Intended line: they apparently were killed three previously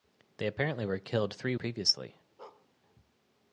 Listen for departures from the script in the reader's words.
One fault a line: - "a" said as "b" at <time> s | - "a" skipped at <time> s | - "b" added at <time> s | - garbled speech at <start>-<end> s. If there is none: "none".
none